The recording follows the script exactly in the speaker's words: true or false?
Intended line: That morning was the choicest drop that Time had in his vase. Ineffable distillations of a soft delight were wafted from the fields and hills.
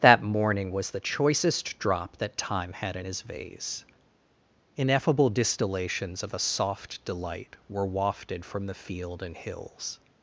false